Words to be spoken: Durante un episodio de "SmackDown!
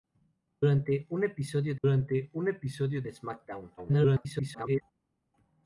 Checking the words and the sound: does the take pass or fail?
fail